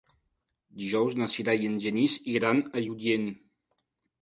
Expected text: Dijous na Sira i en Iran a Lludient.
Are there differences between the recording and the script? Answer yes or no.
yes